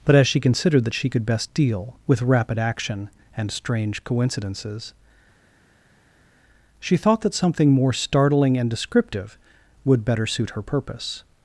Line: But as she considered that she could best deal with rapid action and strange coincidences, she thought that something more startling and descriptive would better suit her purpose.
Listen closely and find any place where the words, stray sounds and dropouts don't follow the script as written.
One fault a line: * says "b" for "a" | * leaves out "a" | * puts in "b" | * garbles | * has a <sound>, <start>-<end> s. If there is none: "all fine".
all fine